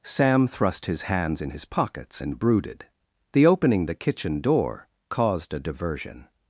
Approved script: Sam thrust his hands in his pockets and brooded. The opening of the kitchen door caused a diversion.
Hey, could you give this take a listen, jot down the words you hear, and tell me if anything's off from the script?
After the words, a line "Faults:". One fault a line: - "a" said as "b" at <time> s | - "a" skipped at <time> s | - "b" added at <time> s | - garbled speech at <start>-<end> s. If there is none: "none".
Sam thrust his hands in his pockets and brooded. The opening the kitchen door caused a diversion.
Faults:
- "of" skipped at 3.9 s